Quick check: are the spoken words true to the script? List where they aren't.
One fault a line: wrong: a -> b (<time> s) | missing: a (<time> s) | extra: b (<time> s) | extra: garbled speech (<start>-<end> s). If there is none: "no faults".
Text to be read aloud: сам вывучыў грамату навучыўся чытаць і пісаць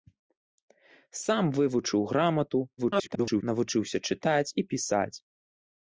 extra: garbled speech (2.8-3.4 s)